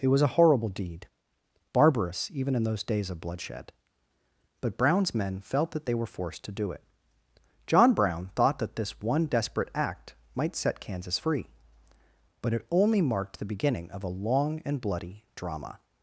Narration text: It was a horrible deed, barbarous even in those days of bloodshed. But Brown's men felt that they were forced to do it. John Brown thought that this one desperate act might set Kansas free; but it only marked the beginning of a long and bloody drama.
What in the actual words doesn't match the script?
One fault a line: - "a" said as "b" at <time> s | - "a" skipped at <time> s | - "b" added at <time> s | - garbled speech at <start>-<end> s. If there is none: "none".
none